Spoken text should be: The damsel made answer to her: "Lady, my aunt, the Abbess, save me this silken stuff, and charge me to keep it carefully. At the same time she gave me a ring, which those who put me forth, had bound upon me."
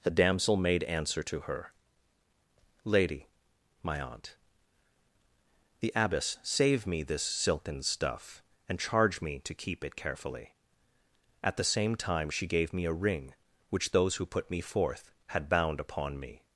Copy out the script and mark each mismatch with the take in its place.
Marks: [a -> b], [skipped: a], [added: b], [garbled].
The damsel made answer to her: "Lady, my aunt, the Abbess, save me this silken stuff, and charge me to keep it carefully. At the same time she gave me a ring, which those who put me forth, had bound upon me."